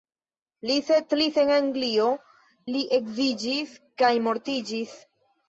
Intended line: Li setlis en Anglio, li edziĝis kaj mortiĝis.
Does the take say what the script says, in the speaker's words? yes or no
yes